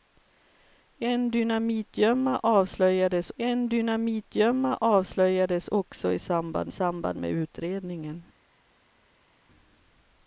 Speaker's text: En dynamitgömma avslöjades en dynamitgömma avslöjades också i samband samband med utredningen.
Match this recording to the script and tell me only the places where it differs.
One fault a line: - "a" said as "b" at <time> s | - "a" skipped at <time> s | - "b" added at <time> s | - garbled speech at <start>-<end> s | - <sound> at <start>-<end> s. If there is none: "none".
none